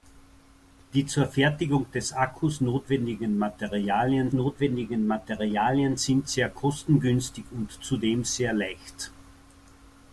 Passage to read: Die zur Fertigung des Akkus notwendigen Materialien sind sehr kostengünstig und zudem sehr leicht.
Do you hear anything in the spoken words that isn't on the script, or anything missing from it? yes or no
yes